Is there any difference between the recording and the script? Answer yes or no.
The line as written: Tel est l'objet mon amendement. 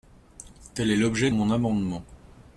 no